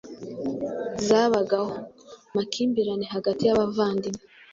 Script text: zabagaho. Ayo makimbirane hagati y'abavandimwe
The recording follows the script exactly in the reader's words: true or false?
false